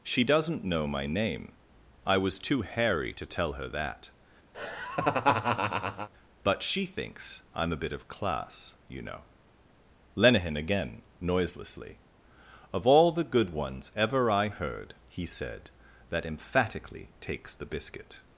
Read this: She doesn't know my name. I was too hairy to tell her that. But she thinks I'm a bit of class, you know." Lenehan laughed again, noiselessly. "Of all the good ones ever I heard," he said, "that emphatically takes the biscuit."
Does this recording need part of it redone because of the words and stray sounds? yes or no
yes